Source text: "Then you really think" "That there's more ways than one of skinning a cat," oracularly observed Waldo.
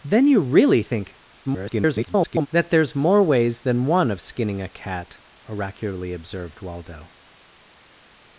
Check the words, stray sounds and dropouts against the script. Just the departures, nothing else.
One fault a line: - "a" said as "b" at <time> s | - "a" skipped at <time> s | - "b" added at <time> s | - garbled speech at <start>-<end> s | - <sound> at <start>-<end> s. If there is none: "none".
- garbled speech at 1.4-2.5 s